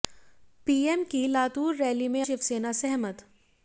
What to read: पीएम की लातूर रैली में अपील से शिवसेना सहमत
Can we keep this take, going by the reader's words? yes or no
no